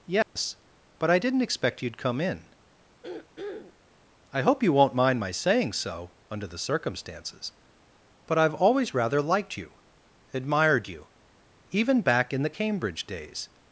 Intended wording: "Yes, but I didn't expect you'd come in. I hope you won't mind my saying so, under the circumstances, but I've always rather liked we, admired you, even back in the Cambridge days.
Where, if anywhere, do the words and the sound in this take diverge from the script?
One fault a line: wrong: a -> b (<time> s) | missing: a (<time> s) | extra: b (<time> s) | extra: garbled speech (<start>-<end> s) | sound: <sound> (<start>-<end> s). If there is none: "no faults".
sound: dropout (0.2-0.4 s)
sound: throat clearing (3.0-3.7 s)
wrong: we -> you (9.6 s)